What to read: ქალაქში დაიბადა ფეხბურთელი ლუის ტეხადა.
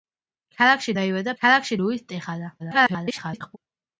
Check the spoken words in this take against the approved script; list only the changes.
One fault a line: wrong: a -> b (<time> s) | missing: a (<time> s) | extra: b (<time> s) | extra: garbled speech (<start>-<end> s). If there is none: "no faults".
wrong: ფეხბურთელი -> ქალაქში (1.4 s)
extra: garbled speech (2.6-3.6 s)